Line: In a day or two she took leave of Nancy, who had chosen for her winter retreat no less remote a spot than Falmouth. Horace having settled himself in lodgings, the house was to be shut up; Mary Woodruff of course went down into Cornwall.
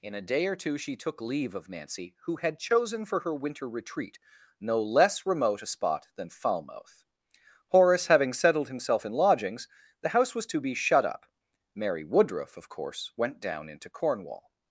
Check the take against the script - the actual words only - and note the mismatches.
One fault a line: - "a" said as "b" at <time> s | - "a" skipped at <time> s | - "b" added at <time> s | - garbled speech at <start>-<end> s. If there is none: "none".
none